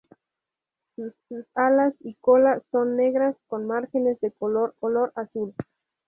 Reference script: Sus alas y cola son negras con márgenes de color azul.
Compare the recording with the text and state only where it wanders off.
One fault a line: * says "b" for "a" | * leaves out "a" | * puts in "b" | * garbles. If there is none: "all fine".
* puts in "sus"
* puts in "color"